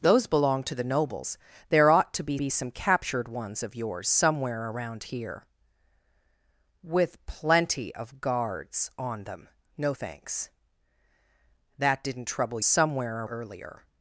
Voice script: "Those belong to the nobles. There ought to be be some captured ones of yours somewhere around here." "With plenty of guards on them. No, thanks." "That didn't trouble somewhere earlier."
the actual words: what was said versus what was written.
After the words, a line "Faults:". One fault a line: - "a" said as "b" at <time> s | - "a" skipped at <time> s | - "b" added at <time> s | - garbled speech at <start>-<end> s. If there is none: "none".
"Those belong to the nobles. There ought to be be some captured ones of yours somewhere around here." "With plenty of guards on them. No, thanks." "That didn't trouble somewhere earlier."
Faults:
none